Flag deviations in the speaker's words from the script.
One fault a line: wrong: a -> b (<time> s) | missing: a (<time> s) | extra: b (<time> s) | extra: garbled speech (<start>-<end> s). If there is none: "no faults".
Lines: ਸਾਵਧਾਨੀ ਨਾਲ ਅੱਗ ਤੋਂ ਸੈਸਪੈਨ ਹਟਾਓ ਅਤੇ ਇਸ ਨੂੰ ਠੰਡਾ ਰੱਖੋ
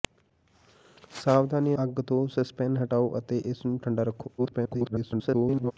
missing: ਨਾਲ (1.8 s)
extra: garbled speech (4.4-5.7 s)